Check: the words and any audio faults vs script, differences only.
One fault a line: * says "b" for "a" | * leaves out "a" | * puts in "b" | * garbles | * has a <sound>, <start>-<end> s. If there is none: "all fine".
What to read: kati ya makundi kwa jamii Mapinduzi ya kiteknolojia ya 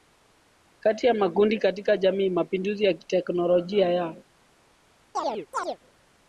* says "katika" for "kwa"
* has a chirp, 5.1-5.8 s